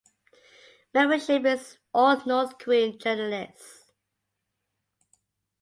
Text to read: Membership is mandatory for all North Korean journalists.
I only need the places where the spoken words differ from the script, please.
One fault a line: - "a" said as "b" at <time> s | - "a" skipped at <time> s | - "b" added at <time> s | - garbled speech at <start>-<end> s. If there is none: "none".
- "mandatory for" skipped at 1.8 s